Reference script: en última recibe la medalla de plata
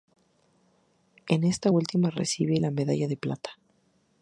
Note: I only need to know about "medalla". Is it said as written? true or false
true